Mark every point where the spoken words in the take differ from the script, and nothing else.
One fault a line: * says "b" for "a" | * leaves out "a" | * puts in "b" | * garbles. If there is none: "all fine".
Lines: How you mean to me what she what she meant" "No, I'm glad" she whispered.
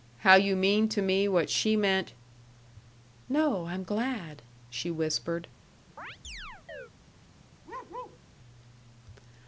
* leaves out "what she"